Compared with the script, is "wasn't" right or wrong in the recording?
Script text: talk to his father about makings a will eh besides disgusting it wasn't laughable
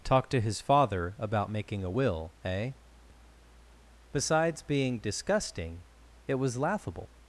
wrong